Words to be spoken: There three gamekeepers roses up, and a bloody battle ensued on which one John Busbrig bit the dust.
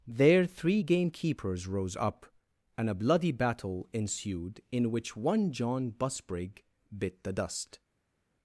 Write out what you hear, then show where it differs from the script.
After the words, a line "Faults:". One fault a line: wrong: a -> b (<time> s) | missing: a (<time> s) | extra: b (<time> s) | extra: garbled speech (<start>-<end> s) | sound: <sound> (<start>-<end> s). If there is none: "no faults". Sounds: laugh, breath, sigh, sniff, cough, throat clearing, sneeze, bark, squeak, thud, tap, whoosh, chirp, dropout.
There three gamekeepers rose up, and a bloody battle ensued in which one John Busbrig bit the dust.
Faults:
wrong: roses -> rose (1.7 s)
wrong: on -> in (4.7 s)